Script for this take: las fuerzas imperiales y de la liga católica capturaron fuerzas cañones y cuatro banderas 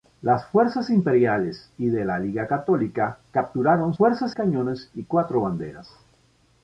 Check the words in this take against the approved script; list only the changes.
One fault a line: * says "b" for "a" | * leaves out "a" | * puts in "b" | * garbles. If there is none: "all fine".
all fine